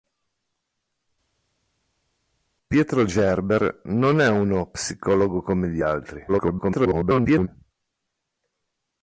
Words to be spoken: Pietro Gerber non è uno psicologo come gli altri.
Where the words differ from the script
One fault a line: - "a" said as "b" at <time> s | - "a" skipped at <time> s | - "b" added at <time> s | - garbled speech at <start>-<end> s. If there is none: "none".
- garbled speech at 6.3-7.5 s